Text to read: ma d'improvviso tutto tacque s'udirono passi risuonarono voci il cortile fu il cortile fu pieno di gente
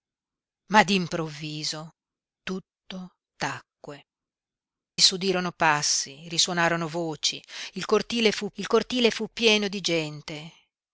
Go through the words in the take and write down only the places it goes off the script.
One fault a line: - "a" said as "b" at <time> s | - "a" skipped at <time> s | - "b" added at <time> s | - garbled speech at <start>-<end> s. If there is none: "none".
none